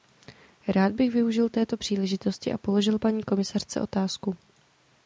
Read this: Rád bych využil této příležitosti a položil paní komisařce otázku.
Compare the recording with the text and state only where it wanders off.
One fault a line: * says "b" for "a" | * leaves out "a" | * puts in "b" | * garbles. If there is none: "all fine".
all fine